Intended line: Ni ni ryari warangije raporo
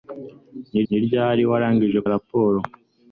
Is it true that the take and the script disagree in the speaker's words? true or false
false